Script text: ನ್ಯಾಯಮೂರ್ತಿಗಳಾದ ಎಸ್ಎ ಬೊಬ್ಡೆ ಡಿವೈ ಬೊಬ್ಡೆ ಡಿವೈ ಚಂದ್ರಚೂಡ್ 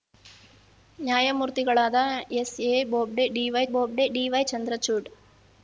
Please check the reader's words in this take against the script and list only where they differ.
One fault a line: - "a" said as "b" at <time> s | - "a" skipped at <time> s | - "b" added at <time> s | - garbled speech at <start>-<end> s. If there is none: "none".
none